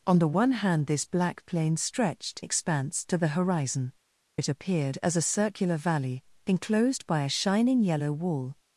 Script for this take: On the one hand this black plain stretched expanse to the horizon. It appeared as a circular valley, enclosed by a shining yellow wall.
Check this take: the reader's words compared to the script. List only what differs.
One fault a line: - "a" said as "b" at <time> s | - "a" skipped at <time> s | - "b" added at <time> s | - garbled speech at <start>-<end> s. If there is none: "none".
none